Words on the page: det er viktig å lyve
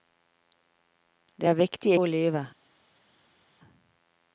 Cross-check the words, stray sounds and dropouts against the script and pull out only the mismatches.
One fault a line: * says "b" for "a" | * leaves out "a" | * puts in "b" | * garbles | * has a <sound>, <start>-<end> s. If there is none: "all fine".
all fine